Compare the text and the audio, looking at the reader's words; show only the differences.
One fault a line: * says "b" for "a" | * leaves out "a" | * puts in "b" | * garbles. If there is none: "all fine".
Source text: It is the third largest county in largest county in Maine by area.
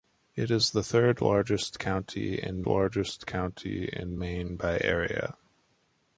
all fine